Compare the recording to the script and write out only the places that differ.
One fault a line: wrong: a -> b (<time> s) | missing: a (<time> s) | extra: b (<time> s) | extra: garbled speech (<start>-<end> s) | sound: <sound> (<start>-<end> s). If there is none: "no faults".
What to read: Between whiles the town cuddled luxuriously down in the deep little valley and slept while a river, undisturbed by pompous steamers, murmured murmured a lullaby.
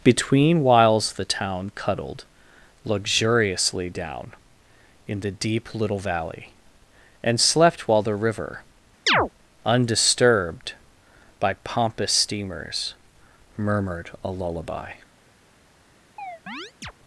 wrong: a -> the (8.0 s)
sound: chirp (9.1-9.3 s)
missing: murmured (14.1 s)
sound: chirp (16.2-16.9 s)